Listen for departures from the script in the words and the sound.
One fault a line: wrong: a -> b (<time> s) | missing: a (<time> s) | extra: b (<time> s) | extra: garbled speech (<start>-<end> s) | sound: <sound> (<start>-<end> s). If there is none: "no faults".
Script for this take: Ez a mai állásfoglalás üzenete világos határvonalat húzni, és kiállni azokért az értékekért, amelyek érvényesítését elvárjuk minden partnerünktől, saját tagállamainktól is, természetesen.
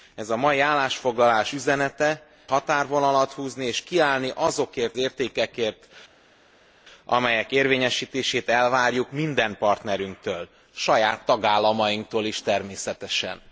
missing: világos (2.2 s)
missing: az (5.0 s)